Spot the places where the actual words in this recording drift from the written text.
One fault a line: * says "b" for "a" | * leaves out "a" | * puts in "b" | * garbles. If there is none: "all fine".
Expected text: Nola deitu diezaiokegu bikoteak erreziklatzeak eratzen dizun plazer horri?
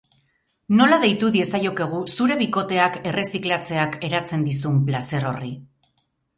* puts in "zure"